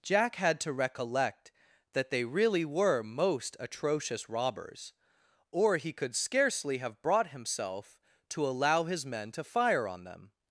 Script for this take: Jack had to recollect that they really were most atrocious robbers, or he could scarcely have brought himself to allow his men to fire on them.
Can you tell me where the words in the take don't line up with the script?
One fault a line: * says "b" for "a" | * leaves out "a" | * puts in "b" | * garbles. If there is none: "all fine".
all fine